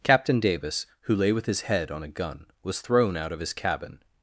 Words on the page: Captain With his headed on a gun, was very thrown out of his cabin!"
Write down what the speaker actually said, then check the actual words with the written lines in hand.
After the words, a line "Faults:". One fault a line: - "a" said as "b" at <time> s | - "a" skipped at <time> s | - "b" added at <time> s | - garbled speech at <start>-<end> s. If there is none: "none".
Captain Davis, who lay with his head on a gun, was thrown out of his cabin!"
Faults:
- "Davis who lay" added at 0.4 s
- "headed" said as "head" at 1.6 s
- "very" skipped at 2.8 s